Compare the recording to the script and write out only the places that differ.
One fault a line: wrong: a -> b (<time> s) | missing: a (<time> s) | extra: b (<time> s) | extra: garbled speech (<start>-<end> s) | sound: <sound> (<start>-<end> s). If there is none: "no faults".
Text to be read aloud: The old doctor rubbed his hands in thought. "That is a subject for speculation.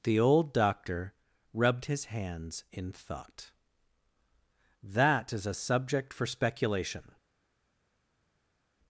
no faults